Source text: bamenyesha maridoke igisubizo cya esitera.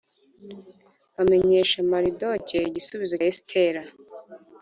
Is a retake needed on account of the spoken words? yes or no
yes